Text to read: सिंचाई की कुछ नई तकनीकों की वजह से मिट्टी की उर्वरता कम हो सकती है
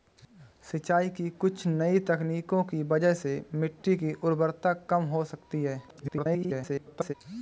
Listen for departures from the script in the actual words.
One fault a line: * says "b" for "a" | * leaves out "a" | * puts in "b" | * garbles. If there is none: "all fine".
* garbles